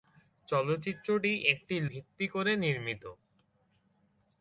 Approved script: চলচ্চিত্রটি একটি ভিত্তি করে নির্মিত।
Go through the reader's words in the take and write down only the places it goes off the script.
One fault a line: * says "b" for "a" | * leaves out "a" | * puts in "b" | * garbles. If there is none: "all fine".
all fine